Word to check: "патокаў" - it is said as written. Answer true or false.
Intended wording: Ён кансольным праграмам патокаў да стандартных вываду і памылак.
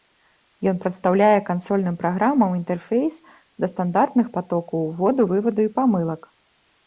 false